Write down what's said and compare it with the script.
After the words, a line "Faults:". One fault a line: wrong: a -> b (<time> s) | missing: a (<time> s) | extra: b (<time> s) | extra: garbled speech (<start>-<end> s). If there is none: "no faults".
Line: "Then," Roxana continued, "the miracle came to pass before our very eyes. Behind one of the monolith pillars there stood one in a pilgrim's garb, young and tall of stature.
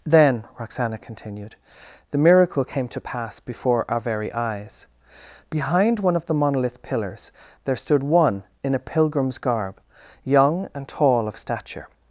"Then," Roxana continued, "the miracle came to pass before our very eyes. Behind one of the monolith pillars there stood one in a pilgrim's garb, young and tall of stature.
Faults:
no faults